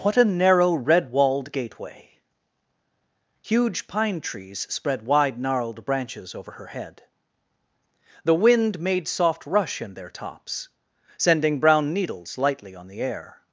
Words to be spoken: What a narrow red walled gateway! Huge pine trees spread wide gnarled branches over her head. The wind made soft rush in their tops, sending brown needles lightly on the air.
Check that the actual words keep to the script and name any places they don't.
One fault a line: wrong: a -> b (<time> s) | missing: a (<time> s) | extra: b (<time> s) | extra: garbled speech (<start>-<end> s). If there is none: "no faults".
no faults